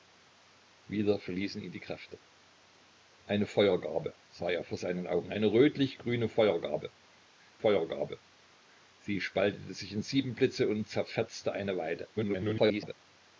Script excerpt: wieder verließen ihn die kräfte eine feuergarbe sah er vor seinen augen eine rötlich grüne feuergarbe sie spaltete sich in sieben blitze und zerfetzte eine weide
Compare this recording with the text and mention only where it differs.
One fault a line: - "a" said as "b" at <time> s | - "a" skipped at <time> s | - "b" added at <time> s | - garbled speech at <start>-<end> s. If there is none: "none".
- "feuergarbe" added at 7.6 s
- garbled speech at 12.2-12.9 s